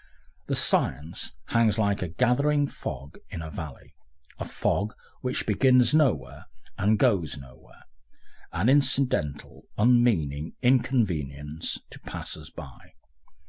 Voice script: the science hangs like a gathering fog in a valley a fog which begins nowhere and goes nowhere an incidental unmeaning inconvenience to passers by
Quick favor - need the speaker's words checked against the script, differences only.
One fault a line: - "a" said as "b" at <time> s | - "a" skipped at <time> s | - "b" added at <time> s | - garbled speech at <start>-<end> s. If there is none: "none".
none